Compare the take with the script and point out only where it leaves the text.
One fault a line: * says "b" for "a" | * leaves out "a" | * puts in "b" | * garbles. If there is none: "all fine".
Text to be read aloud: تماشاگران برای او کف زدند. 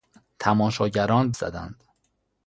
* leaves out "برای او کف"